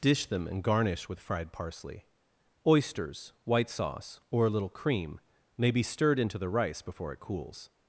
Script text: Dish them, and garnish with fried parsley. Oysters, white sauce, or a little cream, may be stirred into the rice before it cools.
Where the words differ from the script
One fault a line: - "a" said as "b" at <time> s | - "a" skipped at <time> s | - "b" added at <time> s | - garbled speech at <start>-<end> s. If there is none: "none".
none